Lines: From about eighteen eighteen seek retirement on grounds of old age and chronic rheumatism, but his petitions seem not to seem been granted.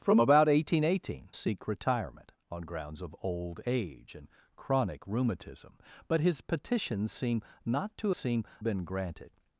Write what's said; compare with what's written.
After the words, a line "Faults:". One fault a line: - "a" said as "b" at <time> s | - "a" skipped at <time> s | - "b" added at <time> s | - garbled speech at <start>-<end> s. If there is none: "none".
From about eighteen eighteen seek retirement on grounds of old age and chronic rheumatism, but his petitions seem not to seem been granted.
Faults:
none